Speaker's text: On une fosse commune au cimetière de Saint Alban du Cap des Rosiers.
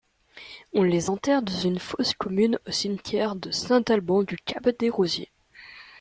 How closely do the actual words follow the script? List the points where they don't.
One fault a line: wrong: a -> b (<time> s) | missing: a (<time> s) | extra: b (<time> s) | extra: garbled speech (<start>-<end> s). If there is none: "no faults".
extra: les enterre dans (0.8 s)